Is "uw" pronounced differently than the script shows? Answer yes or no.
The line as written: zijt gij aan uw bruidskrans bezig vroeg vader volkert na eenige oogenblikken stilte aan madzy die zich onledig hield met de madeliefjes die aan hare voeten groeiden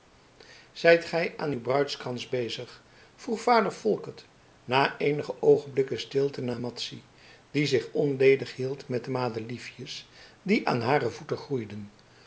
no